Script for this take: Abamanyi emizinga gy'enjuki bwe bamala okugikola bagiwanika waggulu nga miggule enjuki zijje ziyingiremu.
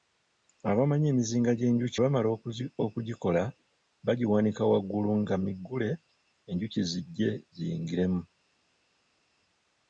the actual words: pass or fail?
fail